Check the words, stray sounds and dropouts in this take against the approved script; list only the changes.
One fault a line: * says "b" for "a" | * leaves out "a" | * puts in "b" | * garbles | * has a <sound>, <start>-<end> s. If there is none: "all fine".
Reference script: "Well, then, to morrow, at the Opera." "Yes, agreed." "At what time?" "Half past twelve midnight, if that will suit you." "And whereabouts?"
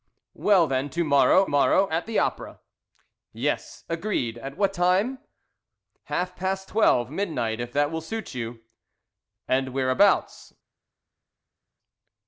* puts in "morrow"